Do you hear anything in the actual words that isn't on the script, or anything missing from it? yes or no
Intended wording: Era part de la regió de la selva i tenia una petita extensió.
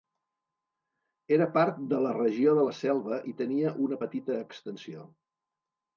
no